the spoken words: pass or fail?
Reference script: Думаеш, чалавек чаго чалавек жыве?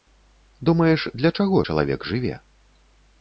fail